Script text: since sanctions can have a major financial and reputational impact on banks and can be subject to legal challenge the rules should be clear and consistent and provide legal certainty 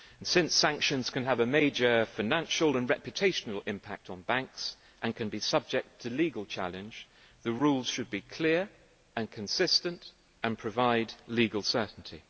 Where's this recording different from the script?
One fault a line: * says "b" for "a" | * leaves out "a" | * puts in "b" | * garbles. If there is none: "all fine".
all fine